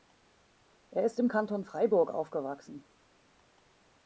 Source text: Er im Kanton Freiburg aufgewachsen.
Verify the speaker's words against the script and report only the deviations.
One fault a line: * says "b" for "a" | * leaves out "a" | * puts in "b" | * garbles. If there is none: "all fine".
* puts in "ist"